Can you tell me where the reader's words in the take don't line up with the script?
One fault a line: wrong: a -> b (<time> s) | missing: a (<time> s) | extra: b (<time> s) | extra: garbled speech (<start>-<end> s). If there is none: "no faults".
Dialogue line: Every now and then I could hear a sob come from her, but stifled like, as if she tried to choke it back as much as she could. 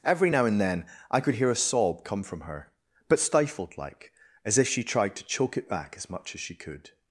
no faults